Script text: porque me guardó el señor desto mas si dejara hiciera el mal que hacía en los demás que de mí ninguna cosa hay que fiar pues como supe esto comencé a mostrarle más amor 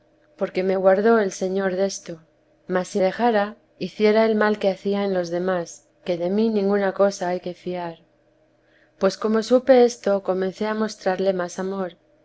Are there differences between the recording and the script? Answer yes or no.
no